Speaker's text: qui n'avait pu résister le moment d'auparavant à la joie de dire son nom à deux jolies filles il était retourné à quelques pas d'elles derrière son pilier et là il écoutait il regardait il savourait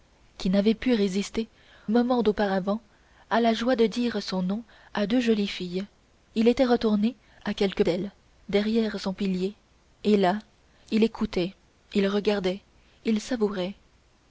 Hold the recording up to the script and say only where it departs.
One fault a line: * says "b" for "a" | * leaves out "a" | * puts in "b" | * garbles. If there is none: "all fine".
* leaves out "le"
* leaves out "pas"